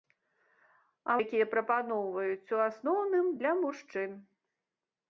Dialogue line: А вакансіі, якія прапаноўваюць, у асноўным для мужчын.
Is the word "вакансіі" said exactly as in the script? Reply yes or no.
no